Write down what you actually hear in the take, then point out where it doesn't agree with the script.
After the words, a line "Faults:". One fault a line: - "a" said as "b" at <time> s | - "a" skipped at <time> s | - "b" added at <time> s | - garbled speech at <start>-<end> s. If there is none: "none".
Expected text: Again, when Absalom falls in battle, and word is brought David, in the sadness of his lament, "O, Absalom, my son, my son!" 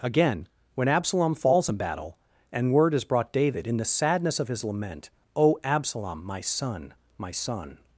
Again, when Absalom falls in battle, and word is brought David, in the sadness of his lament, "O, Absalom, my son, my son!"
Faults:
none